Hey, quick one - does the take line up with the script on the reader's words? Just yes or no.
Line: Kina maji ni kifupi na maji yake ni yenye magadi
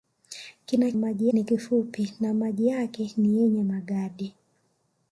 yes